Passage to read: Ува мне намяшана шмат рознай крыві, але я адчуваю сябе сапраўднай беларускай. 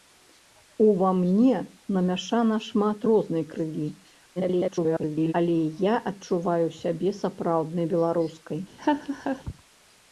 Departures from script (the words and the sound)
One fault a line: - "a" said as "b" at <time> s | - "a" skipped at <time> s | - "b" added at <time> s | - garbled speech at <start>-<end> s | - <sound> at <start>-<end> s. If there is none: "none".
- garbled speech at 4.4-5.3 s
- laugh at 8.8-9.4 s